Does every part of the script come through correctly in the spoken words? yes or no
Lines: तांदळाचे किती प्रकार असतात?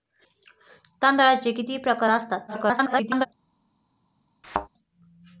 no